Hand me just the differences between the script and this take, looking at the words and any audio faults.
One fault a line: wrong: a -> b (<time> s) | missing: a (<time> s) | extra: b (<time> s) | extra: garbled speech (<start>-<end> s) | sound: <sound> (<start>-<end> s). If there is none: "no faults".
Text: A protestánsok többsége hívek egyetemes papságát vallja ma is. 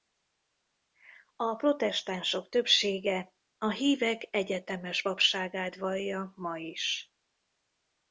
extra: a (3.6 s)